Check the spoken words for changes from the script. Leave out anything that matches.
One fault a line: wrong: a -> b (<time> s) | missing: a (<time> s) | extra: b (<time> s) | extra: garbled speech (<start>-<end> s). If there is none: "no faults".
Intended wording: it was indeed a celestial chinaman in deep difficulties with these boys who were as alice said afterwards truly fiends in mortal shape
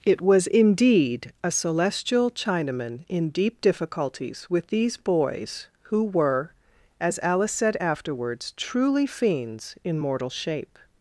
no faults